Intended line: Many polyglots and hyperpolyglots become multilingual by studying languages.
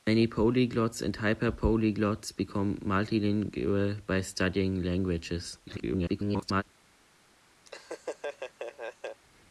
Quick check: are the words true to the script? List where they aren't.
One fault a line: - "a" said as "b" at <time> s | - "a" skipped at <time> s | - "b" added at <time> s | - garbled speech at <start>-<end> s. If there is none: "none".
- garbled speech at 5.7-6.6 s